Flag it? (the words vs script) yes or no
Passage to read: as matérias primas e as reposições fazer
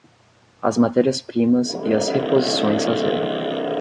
no